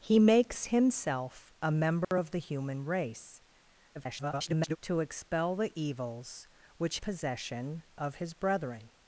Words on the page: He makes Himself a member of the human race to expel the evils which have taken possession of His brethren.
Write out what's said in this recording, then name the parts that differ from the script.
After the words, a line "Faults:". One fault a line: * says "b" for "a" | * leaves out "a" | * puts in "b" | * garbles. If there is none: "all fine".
He makes Himself a member of the human race [garbled] to expel the evils which possession of His brethren.
Faults:
* garbles
* leaves out "have taken"